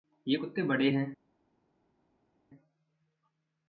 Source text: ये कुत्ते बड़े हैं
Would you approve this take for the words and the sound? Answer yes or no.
yes